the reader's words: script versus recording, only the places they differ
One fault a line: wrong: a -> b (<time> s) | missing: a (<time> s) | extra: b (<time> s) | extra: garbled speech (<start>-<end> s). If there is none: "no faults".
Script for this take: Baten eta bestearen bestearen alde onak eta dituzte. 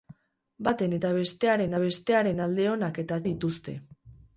no faults